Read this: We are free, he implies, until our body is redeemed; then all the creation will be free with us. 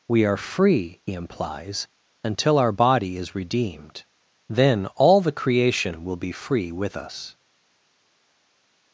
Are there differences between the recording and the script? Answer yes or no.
no